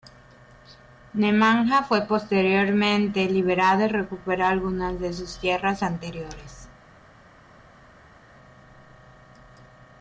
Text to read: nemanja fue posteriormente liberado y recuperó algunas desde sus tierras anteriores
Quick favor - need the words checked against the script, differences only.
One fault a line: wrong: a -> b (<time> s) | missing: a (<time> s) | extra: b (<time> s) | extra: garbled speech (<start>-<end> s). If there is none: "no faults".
wrong: desde -> de (5.0 s)